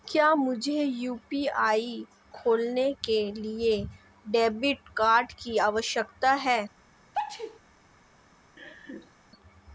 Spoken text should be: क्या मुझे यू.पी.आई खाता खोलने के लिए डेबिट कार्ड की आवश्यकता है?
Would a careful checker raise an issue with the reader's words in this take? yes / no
yes